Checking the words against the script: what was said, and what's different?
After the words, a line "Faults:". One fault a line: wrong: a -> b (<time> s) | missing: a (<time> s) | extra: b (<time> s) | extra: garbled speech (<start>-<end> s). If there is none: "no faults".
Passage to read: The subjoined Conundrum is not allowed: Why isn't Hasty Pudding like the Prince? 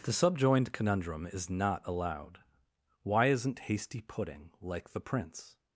The subjoined Conundrum is not allowed: Why isn't Hasty Pudding like the Prince?
Faults:
no faults